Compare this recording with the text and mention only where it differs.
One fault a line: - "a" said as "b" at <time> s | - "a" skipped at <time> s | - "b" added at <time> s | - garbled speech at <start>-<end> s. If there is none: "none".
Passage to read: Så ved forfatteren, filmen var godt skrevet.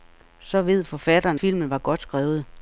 none